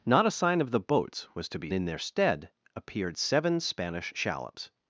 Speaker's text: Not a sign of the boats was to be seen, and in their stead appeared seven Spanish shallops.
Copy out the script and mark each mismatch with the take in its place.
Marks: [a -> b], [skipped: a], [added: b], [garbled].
Not a sign of the boats was to be [skipped: seen, and] in their stead appeared seven Spanish shallops.